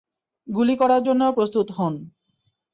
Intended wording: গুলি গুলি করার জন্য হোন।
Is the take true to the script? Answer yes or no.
no